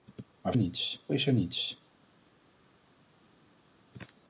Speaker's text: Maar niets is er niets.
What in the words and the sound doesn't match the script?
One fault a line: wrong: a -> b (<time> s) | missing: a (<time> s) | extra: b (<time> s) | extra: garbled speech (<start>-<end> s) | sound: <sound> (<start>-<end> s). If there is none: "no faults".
no faults